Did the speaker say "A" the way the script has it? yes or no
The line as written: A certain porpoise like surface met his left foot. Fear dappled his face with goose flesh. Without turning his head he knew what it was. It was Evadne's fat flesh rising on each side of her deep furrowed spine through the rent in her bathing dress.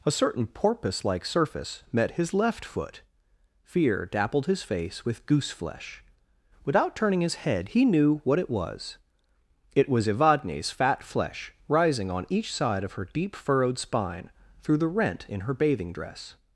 yes